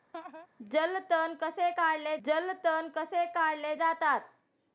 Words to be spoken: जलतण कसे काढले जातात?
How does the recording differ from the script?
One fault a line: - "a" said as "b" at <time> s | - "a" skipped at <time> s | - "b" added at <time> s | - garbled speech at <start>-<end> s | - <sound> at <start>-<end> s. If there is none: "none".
- laugh at 0.1-0.5 s
- "जलतण कसे काढले" added at 2.1 s